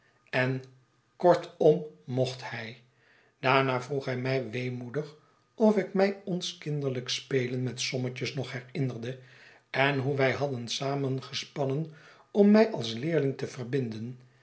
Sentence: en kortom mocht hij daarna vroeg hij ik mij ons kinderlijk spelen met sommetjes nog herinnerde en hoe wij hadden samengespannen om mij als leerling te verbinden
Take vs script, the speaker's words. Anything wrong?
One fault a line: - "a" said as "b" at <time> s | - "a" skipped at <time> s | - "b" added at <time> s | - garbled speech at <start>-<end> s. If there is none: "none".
- "mij weemoedig of" added at 4.2 s